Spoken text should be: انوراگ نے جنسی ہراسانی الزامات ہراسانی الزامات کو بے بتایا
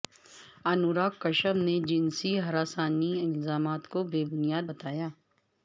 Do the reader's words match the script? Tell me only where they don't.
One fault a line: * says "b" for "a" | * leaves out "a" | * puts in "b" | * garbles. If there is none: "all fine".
* puts in "کشیپ"
* leaves out "ہراسانی الزامات"
* puts in "بنیاد"